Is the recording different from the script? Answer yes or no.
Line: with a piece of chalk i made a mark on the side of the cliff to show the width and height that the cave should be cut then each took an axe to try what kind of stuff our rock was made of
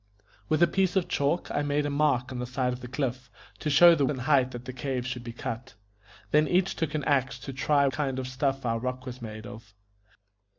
yes